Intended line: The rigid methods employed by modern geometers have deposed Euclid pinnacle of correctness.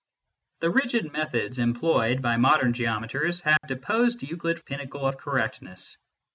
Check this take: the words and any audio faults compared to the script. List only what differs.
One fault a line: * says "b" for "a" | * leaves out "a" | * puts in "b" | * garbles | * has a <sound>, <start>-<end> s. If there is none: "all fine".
* has a dropout, 3.6-3.6 s